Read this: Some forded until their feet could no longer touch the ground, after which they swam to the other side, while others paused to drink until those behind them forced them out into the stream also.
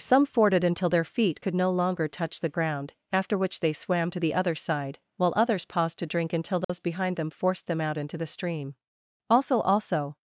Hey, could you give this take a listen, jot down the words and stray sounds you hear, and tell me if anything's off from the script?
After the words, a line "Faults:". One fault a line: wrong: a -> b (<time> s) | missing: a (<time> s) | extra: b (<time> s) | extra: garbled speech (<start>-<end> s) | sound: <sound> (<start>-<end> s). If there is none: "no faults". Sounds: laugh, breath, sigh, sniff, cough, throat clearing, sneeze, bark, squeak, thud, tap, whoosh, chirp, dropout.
Some forded until their feet could no longer touch the ground, after which they swam to the other side, while others paused to drink until those behind them forced them out into the stream also also.
Faults:
sound: dropout (6.6-6.7 s)
extra: also (9.6 s)